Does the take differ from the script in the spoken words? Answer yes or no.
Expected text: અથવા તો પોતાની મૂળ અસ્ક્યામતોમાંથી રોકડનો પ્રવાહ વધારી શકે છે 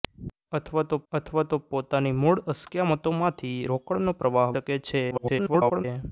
yes